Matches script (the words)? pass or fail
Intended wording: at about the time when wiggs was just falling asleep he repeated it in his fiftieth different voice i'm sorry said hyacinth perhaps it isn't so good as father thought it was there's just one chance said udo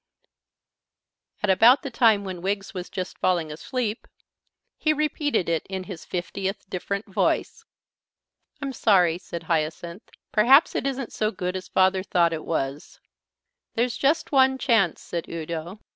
pass